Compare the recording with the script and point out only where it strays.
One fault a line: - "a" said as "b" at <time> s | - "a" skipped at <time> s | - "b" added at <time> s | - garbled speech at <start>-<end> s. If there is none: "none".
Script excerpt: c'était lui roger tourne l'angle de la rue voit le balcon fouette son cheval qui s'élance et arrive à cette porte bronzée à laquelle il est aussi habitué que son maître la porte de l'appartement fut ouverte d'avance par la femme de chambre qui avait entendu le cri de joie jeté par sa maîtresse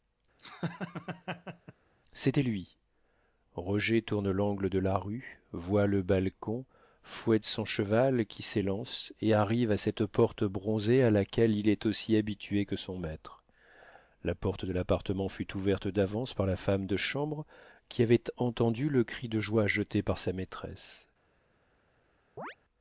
none